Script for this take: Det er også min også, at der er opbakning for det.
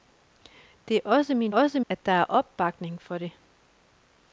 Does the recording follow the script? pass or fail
pass